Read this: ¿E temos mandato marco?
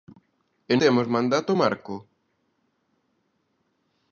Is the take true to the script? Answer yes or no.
yes